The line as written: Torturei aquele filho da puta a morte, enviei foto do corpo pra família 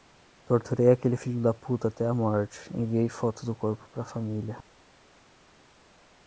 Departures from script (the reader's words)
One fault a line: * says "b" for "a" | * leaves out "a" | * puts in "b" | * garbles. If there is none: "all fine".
* puts in "até"